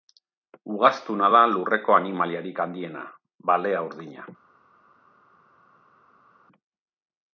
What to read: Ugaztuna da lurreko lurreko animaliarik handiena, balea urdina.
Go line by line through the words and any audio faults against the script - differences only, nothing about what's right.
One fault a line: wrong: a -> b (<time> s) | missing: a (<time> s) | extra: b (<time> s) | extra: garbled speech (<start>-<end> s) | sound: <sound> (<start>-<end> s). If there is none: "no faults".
missing: lurreko (2.0 s)